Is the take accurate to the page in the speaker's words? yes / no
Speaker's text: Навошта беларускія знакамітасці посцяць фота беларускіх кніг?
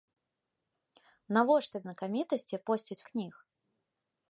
no